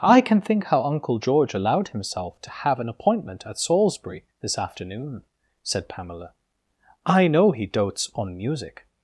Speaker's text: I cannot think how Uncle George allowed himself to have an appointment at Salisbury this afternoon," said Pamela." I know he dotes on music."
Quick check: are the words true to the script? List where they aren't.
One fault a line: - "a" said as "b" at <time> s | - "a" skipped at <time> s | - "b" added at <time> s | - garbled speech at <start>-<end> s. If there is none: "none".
- "cannot" said as "can" at 0.2 s